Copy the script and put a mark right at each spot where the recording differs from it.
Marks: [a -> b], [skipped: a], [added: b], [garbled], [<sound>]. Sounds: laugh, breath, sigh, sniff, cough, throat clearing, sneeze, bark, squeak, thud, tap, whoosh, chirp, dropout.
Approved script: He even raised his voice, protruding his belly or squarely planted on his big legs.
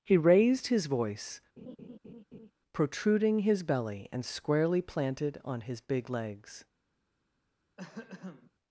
He [skipped: even] raised his voice, [laugh] protruding his belly [or -> and] squarely planted on his big legs. [throat clearing]